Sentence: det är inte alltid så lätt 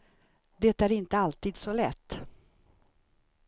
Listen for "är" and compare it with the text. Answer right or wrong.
right